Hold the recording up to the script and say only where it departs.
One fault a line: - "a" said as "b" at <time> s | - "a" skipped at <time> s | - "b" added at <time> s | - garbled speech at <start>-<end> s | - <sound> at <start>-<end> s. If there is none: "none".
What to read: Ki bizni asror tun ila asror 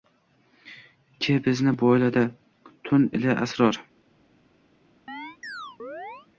- "asror" said as "boyladi" at 1.8 s
- chirp at 5.1-6.3 s